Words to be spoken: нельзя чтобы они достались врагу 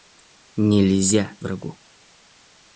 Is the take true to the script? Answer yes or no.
no